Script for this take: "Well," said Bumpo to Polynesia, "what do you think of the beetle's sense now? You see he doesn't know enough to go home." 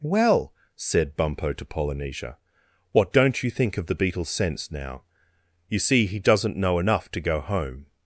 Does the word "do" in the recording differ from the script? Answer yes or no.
yes